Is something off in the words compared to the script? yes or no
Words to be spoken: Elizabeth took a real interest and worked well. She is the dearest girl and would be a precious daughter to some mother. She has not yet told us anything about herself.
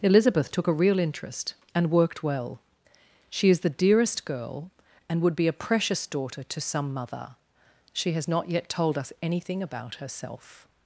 no